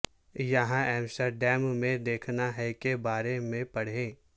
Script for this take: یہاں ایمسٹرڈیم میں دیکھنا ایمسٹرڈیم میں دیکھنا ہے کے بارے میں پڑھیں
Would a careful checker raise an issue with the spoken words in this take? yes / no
yes